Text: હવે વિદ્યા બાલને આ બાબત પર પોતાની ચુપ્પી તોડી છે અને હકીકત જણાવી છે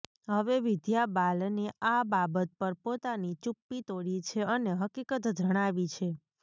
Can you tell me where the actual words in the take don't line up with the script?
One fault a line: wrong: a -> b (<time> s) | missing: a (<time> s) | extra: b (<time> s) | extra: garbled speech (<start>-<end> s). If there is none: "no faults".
no faults